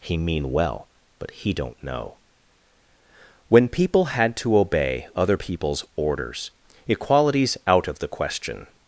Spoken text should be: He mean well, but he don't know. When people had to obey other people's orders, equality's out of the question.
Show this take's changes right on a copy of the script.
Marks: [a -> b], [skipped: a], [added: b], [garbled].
He mean well, but he don't know. When people had to obey other people's orders, equality's out of the question.